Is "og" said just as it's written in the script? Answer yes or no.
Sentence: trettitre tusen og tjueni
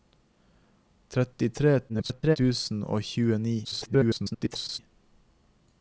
yes